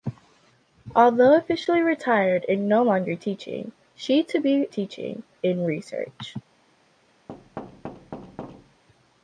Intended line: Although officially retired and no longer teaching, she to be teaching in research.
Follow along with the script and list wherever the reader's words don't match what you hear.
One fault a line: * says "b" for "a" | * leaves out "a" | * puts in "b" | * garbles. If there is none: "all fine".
all fine